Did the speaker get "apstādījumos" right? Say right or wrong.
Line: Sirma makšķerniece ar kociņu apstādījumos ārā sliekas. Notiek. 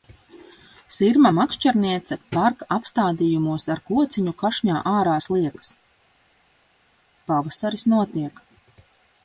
wrong